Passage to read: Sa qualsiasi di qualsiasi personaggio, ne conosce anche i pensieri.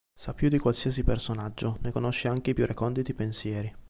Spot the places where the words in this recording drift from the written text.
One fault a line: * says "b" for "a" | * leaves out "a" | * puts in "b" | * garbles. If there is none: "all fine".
* says "più" for "qualsiasi"
* puts in "più reconditi"